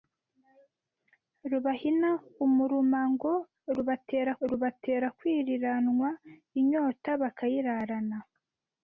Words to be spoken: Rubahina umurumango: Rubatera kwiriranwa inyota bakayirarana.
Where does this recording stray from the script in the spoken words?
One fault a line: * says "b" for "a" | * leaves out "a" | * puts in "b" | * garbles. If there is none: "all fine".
* puts in "Rubatera"